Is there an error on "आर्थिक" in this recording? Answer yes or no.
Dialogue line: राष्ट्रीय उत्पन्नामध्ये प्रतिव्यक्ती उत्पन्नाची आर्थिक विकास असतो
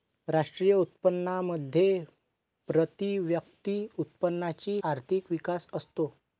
no